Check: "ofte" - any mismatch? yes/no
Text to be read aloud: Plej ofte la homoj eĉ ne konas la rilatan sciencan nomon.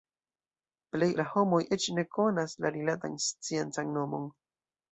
yes